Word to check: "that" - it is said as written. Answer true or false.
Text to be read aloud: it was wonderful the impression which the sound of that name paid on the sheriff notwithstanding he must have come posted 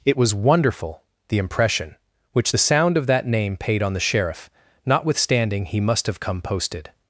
true